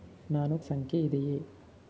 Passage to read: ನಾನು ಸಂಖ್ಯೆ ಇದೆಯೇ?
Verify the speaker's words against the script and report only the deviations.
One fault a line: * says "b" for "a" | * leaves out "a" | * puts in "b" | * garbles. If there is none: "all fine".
all fine